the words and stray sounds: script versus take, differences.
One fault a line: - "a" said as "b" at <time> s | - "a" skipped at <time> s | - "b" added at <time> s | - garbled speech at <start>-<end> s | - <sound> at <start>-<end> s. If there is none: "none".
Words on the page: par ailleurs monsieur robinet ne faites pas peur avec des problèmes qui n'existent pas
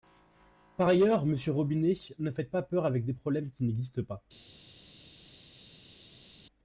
none